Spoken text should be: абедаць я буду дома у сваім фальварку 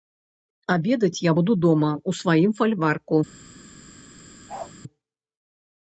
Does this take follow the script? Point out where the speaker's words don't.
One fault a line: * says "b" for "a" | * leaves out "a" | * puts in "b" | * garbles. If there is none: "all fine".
all fine